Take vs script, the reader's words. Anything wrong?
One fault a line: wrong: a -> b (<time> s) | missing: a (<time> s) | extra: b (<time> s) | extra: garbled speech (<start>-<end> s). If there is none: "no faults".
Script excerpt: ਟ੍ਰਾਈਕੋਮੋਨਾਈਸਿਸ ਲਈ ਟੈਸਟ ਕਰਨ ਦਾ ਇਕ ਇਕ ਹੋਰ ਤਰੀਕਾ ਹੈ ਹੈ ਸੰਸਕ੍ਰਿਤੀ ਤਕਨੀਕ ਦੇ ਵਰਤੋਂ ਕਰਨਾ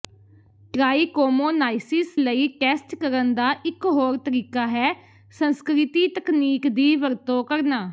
missing: ਇਕ (3.8 s)
missing: ਹੈ (4.9 s)
wrong: ਦੇ -> ਦੀ (6.7 s)